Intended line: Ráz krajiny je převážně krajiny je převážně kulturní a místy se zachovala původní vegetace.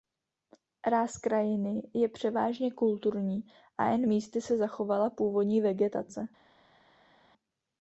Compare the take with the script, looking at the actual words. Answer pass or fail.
fail